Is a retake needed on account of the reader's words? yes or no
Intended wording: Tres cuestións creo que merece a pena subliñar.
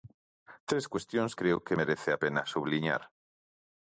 no